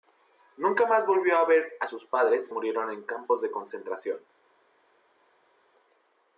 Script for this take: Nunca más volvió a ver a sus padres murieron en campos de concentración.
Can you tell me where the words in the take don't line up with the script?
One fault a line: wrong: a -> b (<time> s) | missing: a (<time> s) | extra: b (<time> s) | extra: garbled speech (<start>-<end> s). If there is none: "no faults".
no faults